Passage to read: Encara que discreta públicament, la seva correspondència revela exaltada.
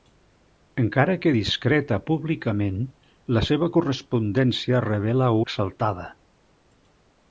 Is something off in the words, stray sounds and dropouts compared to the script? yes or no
no